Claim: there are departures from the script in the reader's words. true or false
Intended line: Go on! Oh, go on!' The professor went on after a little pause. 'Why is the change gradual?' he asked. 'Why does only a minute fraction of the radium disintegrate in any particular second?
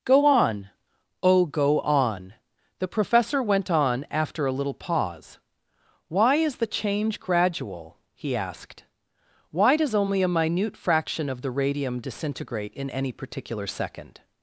false